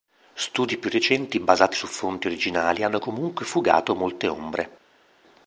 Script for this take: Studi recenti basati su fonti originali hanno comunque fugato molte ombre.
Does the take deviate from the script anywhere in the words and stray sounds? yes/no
yes